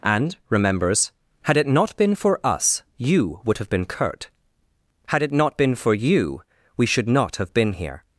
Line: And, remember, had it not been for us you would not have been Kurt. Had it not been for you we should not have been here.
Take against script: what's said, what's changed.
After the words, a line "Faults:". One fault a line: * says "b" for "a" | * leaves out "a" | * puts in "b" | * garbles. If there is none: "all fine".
And, remembers, had it not been for us you would have been Kurt. Had it not been for you we should not have been here.
Faults:
* says "remembers" for "remember"
* leaves out "not"